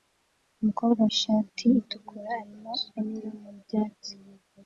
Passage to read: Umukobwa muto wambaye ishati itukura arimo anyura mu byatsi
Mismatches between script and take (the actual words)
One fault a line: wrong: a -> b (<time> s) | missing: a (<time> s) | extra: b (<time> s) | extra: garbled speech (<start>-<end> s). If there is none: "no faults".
missing: muto wambaye (1.0 s)